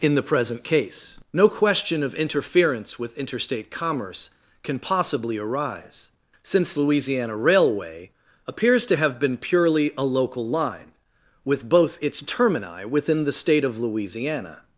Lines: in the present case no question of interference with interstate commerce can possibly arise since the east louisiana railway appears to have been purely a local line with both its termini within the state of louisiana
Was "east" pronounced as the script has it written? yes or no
no